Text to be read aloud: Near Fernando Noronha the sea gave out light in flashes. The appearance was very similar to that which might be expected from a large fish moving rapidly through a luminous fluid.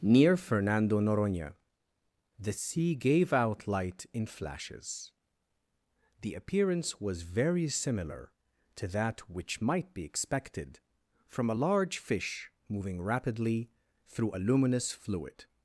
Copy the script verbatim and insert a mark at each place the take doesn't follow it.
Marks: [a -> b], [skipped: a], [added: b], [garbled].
Near Fernando Noronha the sea gave out light in flashes. The appearance was very similar to that which might be expected from a large fish moving rapidly through a luminous fluid.